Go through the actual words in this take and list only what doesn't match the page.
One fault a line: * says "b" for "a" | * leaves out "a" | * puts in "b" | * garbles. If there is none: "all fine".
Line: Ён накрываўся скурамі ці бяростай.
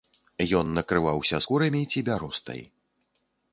all fine